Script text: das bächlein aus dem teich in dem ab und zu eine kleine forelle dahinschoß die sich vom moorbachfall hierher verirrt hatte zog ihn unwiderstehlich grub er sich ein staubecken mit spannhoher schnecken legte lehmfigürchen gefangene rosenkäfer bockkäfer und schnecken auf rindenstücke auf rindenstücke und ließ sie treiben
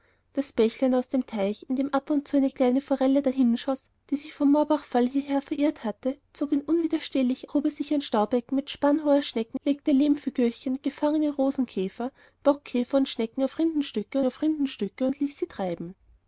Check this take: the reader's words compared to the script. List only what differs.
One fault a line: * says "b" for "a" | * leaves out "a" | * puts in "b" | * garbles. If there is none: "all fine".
all fine